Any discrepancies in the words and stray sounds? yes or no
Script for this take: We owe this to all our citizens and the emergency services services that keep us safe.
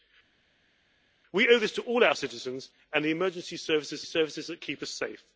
no